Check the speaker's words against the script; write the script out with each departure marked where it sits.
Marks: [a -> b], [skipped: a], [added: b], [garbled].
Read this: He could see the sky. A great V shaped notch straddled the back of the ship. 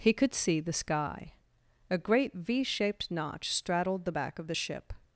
He could see the sky. A great V shaped notch straddled the back of the ship.